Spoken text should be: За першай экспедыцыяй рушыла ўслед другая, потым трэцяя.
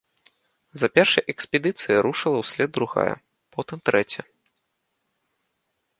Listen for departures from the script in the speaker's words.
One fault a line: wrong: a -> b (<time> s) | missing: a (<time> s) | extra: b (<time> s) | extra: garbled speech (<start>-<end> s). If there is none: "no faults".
no faults